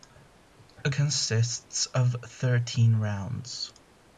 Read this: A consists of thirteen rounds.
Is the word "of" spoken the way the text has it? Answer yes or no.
yes